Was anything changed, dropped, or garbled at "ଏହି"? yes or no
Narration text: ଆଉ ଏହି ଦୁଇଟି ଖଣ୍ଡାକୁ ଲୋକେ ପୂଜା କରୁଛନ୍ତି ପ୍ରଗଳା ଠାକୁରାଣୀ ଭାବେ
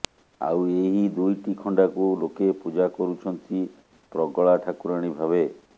no